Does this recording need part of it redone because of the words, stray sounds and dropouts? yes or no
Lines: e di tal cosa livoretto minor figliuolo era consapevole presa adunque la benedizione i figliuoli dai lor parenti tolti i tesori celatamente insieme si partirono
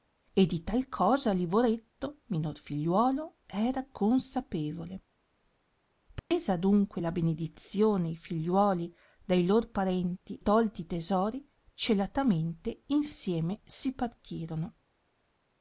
yes